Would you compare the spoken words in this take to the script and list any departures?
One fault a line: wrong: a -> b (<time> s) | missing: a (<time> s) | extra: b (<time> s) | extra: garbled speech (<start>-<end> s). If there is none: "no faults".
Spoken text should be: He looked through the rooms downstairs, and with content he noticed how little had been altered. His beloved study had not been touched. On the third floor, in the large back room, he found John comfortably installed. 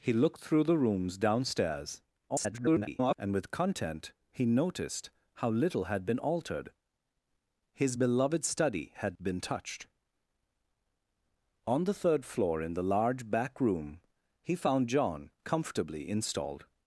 extra: garbled speech (2.3-3.1 s)
missing: not (9.2 s)